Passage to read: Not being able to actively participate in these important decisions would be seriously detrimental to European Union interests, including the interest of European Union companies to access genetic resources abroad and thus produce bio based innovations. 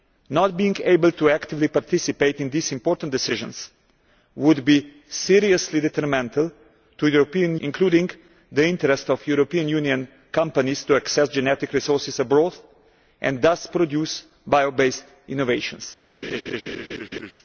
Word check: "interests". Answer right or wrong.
wrong